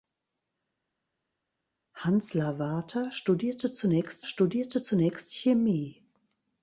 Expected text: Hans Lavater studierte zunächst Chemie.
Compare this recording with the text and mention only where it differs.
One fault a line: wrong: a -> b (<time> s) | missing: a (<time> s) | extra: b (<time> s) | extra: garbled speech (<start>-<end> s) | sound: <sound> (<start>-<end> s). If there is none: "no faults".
extra: studierte zunächst (4.2 s)